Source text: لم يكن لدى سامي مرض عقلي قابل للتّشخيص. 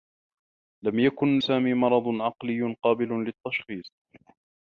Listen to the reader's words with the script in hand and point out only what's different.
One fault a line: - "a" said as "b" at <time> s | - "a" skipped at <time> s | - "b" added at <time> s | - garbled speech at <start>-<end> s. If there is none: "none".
- "لدى" skipped at 1.4 s